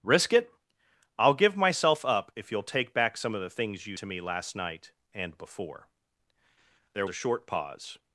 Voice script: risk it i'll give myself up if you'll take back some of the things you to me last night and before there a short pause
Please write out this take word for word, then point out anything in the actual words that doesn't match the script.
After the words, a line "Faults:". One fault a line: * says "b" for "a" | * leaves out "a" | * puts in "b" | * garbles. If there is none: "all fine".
risk it i'll give myself up if you'll take back some of the things you to me last night and before there a short pause
Faults:
all fine